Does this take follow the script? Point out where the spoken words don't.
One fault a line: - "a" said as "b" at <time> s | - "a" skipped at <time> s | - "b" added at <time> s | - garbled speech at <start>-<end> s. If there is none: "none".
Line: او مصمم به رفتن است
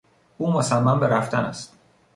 none